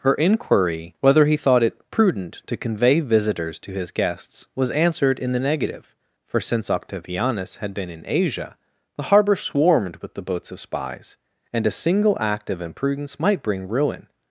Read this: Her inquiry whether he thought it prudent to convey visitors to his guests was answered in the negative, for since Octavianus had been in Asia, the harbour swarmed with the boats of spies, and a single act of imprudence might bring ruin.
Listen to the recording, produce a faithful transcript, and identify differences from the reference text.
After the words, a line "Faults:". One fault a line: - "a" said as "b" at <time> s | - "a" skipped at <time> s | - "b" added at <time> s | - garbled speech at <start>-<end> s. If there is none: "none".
Her inquiry whether he thought it prudent to convey visitors to his guests was answered in the negative, for since Octavianus had been in Asia, the harbour swarmed with the boats of spies, and a single act of imprudence might bring ruin.
Faults:
none